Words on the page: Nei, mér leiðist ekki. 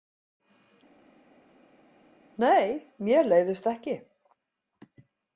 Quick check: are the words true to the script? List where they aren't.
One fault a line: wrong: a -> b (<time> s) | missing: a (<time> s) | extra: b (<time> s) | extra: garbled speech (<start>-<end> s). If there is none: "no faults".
no faults